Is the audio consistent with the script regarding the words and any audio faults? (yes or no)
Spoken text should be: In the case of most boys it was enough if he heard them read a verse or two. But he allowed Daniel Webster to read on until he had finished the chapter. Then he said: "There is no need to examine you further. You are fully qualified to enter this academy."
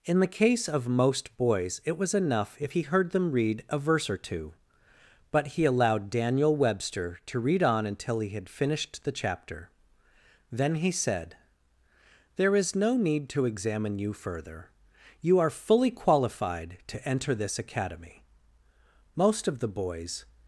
no